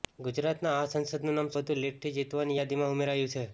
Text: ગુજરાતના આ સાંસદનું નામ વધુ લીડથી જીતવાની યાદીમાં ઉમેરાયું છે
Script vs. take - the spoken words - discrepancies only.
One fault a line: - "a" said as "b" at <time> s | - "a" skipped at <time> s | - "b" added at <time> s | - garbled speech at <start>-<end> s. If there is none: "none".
none